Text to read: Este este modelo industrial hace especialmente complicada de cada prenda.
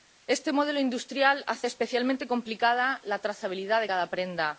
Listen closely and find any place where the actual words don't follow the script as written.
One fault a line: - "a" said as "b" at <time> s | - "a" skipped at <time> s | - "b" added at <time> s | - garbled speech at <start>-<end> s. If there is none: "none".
- "este" skipped at 0.5 s
- "la trazabilidad" added at 3.0 s